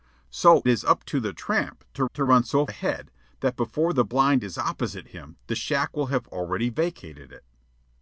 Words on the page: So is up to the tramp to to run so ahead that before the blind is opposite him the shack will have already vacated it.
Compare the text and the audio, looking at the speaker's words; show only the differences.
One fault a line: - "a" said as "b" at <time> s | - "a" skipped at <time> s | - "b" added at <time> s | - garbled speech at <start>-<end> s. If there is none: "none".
none